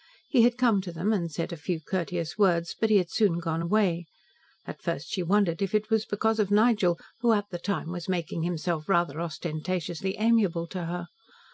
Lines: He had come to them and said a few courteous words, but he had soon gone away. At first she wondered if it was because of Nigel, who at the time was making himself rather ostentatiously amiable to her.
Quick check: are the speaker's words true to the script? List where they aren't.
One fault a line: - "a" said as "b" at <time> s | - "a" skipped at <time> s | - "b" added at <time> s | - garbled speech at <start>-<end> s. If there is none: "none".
none